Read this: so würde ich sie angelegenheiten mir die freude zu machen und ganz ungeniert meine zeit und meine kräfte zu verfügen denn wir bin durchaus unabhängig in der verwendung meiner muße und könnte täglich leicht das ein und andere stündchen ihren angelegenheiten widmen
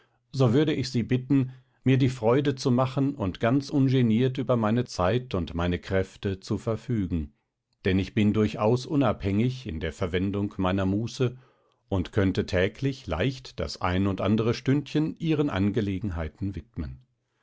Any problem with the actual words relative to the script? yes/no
yes